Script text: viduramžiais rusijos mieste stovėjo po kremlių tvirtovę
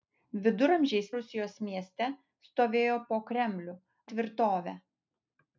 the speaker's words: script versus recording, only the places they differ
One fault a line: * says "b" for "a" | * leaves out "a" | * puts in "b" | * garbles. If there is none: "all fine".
all fine